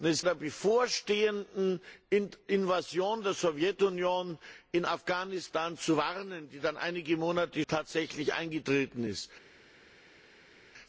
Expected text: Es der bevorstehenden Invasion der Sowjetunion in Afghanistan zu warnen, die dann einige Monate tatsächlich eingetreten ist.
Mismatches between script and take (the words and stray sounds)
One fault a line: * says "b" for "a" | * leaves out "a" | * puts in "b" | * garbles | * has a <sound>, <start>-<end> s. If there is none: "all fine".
all fine